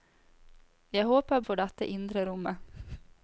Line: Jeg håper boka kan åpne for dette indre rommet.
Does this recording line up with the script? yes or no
no